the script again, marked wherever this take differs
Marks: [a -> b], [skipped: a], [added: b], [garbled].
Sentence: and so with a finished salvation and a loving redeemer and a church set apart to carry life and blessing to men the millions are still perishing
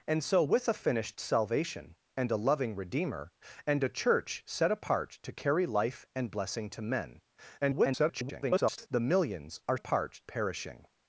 and so with a finished salvation and a loving redeemer and a church set apart to carry life and blessing to men [garbled] the millions are [still -> apart] perishing